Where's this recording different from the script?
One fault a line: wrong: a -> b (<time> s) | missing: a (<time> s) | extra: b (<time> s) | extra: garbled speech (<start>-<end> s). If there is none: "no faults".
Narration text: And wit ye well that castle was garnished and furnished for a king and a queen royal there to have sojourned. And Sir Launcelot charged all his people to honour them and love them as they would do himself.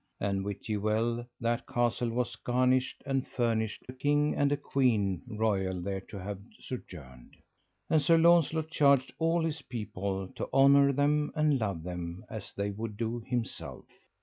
missing: for (3.9 s)